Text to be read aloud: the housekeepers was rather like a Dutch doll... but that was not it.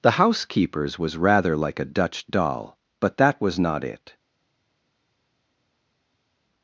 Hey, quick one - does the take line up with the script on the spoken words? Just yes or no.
yes